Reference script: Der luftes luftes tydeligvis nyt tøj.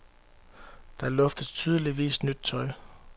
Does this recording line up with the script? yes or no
no